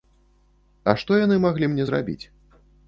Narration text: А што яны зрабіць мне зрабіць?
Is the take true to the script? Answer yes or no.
no